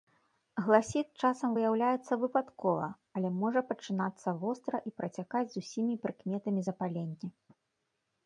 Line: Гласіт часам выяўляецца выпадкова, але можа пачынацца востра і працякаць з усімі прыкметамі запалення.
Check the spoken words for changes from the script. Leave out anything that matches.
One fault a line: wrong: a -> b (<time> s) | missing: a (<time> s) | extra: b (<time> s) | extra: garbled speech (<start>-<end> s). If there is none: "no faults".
no faults